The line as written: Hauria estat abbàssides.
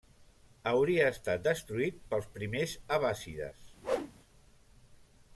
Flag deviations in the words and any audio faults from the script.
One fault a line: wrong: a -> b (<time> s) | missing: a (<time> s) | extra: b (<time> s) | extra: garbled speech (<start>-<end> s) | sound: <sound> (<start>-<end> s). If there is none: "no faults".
extra: destruït pels primers (1.5 s)
sound: whoosh (3.8-4.1 s)